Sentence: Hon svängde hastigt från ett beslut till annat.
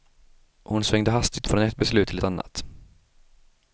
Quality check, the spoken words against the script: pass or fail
pass